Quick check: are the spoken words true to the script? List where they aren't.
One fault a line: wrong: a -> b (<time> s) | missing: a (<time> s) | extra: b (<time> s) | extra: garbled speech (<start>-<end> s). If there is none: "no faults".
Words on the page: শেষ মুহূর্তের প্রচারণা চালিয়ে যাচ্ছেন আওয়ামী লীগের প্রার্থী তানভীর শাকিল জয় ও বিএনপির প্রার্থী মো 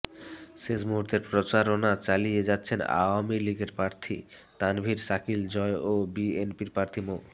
no faults